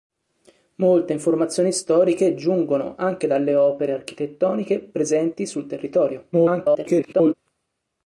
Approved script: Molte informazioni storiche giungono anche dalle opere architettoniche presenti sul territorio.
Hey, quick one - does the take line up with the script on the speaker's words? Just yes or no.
no